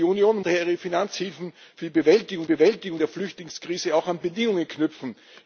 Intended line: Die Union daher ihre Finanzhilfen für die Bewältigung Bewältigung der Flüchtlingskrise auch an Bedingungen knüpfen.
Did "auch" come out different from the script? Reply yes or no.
no